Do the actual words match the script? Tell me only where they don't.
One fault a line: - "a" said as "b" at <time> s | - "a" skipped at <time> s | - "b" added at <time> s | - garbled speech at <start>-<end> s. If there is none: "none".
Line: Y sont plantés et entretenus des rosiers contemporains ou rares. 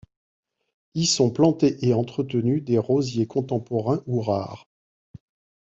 none